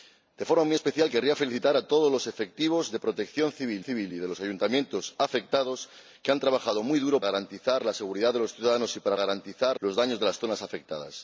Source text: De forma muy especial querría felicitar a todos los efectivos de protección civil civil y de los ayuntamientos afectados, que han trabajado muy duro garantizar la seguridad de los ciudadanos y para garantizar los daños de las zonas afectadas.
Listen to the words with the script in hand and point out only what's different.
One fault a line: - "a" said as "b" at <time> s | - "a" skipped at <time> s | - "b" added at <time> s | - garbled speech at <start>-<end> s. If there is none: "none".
none